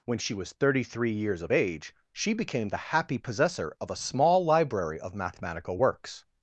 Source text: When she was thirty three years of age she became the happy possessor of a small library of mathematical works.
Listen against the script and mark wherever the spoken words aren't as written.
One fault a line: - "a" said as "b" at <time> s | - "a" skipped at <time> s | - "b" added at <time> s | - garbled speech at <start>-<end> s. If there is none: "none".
none